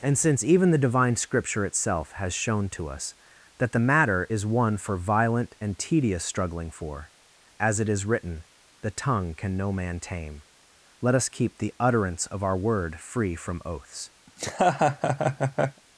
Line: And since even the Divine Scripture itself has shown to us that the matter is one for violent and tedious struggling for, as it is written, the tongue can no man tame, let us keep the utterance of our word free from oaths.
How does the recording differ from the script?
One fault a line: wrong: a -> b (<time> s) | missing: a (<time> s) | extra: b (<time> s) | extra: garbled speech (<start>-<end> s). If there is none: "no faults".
no faults